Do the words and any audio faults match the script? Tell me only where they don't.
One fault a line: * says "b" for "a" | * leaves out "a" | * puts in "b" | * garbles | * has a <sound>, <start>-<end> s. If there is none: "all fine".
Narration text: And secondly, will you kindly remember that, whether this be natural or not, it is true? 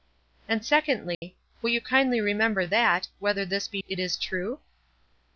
* has a dropout, 1.1-1.2 s
* leaves out "natural or not"